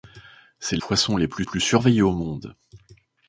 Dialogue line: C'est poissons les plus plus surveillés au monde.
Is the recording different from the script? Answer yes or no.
no